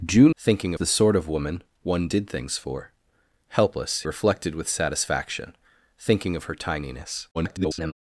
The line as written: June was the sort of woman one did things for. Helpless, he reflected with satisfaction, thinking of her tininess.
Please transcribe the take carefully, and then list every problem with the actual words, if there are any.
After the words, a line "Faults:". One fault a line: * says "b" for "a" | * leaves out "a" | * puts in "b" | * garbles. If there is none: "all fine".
June thinking the sort of woman one did things for. Helpless, reflected with satisfaction, thinking of her tininess. [garbled]
Faults:
* says "thinking" for "was"
* leaves out "he"
* garbles